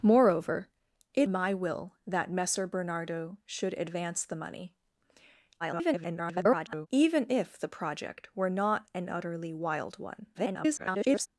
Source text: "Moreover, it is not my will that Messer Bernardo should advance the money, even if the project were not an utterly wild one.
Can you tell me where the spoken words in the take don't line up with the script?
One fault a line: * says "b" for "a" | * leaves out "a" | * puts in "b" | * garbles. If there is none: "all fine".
* leaves out "is not"
* garbles
* garbles